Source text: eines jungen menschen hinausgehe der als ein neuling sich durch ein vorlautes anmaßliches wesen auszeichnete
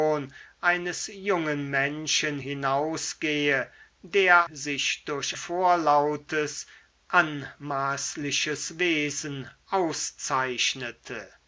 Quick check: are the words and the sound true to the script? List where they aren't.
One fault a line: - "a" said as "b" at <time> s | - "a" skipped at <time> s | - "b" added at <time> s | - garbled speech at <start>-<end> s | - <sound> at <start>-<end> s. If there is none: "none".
- "als ein neuling" skipped at 4.5 s
- "ein" skipped at 5.4 s